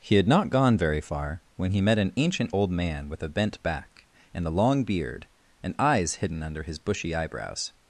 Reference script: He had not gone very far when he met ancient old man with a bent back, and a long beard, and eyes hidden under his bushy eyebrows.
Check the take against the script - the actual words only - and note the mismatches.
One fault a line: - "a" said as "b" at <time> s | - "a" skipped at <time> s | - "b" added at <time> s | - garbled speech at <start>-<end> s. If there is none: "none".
- "an" added at 2.0 s